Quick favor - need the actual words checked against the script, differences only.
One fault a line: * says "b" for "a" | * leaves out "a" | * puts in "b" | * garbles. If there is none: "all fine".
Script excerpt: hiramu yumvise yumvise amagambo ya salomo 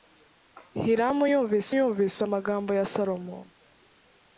all fine